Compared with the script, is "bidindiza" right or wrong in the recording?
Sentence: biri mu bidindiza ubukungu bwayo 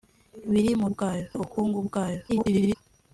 wrong